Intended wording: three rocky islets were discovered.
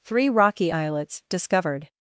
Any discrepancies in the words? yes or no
yes